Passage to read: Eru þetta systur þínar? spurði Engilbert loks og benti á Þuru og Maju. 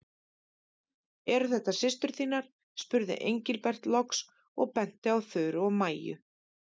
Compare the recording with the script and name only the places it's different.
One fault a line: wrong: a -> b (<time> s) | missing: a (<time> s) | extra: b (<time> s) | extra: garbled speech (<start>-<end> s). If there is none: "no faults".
no faults